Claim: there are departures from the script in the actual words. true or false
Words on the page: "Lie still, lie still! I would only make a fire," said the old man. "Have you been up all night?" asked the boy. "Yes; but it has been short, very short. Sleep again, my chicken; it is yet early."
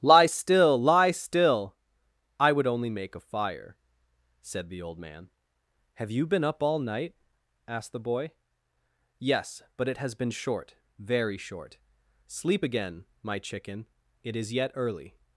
false